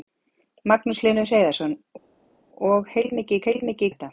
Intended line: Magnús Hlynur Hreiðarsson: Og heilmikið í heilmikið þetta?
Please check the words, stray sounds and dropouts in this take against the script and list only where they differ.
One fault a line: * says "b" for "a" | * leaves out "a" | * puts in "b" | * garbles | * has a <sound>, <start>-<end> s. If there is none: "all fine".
all fine